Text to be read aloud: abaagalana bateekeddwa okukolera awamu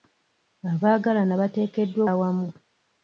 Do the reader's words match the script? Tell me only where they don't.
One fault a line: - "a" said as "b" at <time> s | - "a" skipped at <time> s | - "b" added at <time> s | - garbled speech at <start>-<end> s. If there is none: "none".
- "okukolera" skipped at 2.0 s